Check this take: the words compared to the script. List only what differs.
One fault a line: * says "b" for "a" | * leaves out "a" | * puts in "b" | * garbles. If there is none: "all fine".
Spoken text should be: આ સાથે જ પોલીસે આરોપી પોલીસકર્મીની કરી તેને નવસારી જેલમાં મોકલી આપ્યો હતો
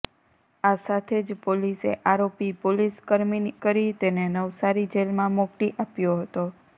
all fine